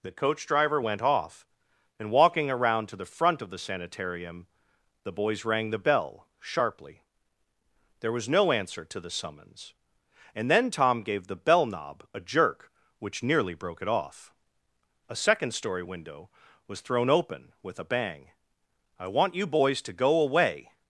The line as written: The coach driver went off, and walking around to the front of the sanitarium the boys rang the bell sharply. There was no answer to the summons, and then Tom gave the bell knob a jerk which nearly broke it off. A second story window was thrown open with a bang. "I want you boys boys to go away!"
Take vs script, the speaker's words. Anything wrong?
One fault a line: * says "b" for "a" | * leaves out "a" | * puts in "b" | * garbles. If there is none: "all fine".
* leaves out "boys"